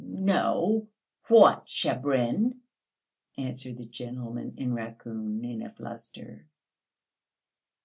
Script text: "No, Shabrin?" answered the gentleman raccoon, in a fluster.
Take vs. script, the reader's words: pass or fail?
fail